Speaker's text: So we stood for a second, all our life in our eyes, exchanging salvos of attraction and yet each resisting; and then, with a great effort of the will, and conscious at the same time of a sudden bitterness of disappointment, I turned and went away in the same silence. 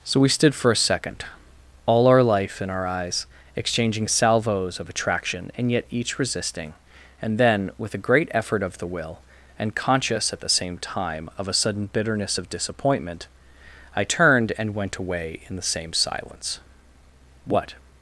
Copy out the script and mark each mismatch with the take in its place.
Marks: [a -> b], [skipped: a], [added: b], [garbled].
So we stood for a second, all our life in our eyes, exchanging salvos of attraction and yet each resisting; and then, with a great effort of the will, and conscious at the same time of a sudden bitterness of disappointment, I turned and went away in the same silence. [added: What]